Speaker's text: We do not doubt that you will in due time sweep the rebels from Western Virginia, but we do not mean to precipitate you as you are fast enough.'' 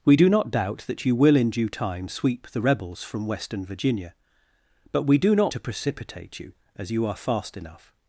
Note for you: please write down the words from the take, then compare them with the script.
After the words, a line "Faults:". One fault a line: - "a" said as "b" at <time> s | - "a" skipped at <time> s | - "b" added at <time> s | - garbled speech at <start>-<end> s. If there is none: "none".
We do not doubt that you will in due time sweep the rebels from Western Virginia, but we do not to precipitate you as you are fast enough.''
Faults:
- "mean" skipped at 5.5 s